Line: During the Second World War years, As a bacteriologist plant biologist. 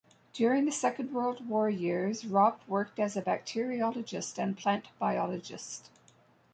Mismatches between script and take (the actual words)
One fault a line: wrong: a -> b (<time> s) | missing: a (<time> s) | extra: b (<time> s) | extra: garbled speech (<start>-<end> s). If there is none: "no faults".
extra: Ropp worked (2.2 s)
extra: and (4.4 s)